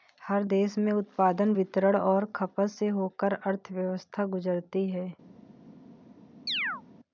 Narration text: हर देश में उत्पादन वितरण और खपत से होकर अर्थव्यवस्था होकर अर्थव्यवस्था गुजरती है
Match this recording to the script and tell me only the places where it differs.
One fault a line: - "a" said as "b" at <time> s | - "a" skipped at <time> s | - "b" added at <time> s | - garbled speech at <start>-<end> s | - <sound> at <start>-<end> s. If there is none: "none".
- "होकर अर्थव्यवस्था" skipped at 4.3 s
- chirp at 6.5-6.8 s